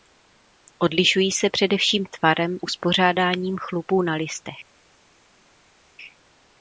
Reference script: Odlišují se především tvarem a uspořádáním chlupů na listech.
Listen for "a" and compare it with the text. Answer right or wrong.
wrong